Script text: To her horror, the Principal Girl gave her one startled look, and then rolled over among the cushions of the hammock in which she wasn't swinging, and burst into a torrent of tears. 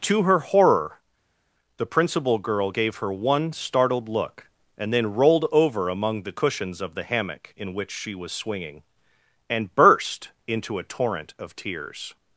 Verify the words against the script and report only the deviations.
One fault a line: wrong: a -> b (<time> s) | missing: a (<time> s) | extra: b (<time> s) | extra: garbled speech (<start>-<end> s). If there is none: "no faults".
wrong: wasn't -> was (8.1 s)